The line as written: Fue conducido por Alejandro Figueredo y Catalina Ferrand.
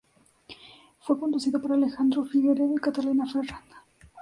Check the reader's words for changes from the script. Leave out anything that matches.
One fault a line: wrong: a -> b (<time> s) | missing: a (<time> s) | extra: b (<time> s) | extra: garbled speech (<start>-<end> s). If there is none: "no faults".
no faults